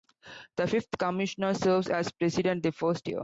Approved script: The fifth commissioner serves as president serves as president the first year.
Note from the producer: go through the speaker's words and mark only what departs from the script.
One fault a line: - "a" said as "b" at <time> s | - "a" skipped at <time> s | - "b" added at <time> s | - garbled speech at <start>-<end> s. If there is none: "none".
- "serves as president" skipped at 2.6 s